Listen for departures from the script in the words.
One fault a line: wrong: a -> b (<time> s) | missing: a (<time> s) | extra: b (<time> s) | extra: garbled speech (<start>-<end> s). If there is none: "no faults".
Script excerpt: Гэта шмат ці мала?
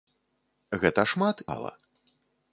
missing: ці (1.4 s)